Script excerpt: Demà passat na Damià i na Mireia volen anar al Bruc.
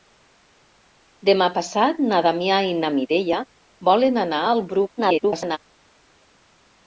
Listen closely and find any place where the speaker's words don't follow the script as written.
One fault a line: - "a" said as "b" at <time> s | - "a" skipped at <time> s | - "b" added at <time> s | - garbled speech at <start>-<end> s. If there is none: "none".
- garbled speech at 5.0-5.6 s